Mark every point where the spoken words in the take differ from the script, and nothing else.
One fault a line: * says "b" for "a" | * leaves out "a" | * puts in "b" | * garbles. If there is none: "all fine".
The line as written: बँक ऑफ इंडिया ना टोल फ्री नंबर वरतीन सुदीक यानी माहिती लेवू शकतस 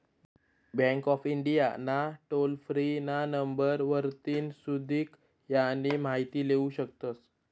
* puts in "ना"